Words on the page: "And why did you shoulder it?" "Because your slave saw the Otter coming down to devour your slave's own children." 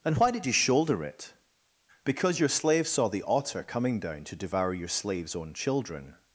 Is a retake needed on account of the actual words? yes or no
no